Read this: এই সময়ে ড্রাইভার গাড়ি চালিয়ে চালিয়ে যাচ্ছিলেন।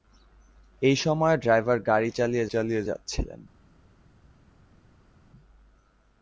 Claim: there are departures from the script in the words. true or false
false